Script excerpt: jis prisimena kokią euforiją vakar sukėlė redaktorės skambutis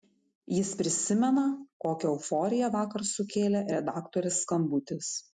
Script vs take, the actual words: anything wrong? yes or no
no